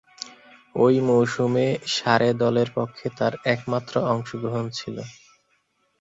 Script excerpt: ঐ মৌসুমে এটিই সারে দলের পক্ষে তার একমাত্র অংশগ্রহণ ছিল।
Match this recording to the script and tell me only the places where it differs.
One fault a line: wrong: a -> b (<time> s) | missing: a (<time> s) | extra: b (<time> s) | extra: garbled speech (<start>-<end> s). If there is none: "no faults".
missing: এটিই (1.6 s)